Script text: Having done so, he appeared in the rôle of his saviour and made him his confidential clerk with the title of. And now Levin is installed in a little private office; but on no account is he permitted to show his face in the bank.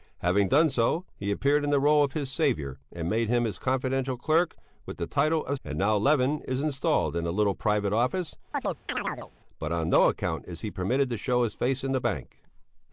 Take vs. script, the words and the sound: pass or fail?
fail